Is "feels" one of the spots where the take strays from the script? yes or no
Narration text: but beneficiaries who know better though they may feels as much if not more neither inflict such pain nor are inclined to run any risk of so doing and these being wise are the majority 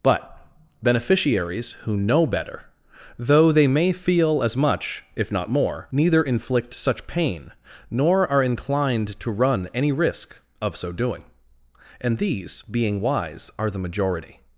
yes